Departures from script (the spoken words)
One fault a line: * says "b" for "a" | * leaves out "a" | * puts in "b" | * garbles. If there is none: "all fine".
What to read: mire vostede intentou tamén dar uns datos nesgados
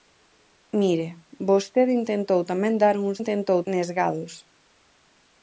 * says "intentou" for "datos"